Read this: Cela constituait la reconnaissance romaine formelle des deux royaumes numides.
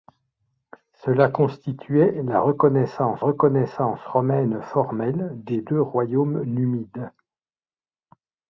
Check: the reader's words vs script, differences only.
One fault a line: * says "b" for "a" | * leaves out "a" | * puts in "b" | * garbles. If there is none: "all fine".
* puts in "reconnaissance"